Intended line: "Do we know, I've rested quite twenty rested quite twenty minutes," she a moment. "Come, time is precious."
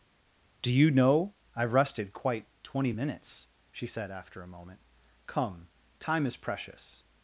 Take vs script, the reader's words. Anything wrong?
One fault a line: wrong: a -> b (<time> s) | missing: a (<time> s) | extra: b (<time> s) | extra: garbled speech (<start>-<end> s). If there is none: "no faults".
wrong: we -> you (0.7 s)
wrong: rested quite twenty minutes she -> minutes she said after (2.9 s)